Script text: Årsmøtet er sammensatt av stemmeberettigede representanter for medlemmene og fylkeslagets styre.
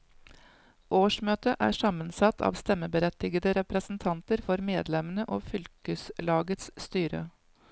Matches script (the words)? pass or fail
pass